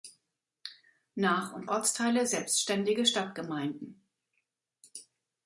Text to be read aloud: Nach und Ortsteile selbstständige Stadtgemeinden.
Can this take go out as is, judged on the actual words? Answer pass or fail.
pass